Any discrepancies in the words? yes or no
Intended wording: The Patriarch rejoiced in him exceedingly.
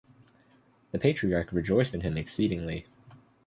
no